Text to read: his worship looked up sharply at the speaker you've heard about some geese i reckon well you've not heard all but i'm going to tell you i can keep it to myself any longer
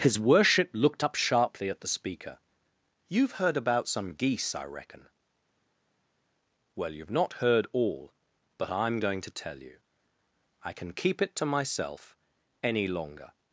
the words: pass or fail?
pass